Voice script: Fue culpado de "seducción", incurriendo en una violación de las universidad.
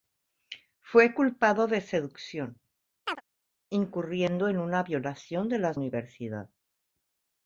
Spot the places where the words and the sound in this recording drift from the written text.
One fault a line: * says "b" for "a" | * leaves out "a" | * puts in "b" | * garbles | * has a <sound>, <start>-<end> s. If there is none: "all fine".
* has a chirp, 3.1-3.2 s